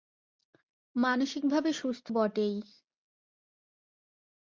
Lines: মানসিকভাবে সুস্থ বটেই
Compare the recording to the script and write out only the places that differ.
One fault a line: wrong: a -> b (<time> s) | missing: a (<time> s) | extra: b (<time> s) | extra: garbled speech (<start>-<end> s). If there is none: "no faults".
no faults